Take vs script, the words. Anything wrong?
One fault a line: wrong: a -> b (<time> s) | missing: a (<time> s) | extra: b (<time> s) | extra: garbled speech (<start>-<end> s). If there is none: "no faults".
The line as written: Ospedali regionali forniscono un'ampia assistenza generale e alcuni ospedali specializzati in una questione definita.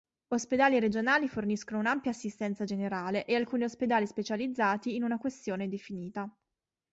no faults